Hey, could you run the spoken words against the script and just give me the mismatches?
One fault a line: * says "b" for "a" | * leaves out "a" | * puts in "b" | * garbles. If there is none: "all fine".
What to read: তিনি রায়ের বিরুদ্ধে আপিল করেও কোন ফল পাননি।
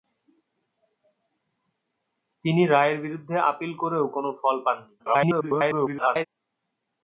* garbles